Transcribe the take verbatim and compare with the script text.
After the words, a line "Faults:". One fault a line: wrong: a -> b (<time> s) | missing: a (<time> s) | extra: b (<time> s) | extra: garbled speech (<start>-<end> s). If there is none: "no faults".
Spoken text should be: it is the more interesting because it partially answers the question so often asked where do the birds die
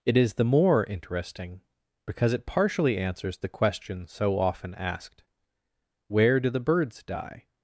it is the more interesting because it partially answers the question so often asked where do the birds die
Faults:
no faults